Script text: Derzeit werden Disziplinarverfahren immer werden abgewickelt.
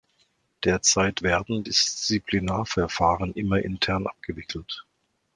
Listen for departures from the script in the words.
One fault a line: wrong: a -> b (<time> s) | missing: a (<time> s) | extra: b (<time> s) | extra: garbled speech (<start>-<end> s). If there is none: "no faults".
wrong: werden -> intern (3.6 s)